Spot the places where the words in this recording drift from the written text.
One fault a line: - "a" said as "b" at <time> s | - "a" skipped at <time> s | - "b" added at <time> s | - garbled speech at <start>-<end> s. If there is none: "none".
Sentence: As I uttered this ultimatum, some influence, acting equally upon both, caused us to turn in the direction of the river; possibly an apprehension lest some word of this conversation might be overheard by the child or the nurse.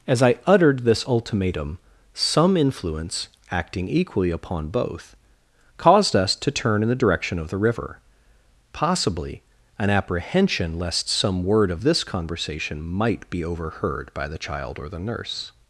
none